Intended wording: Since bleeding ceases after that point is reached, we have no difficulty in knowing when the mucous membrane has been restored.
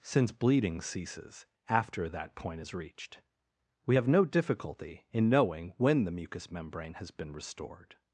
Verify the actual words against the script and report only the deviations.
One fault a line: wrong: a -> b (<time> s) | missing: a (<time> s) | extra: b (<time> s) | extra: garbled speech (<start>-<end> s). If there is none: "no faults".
no faults